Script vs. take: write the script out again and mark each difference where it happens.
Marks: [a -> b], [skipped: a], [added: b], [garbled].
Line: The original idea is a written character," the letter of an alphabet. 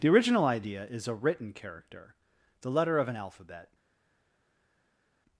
The original idea is a written character," the letter of an alphabet.